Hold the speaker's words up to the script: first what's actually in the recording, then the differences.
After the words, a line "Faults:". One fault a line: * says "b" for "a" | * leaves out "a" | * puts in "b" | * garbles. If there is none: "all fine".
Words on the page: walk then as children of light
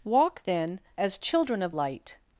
walk then as children of light
Faults:
all fine